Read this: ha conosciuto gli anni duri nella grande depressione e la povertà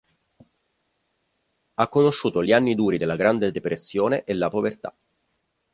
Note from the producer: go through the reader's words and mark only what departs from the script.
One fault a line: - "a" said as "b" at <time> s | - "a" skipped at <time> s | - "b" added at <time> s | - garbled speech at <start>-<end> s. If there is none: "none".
- "nella" said as "della" at 3.0 s